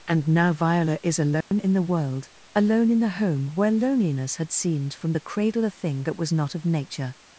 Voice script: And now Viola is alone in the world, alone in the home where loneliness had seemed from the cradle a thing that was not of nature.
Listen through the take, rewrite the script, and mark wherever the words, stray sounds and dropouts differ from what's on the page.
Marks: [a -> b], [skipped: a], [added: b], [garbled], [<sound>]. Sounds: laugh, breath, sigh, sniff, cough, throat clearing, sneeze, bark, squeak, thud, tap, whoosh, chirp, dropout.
And now Viola is alone [dropout] in the world, alone in the home where loneliness had seemed from the cradle a thing that was not of nature.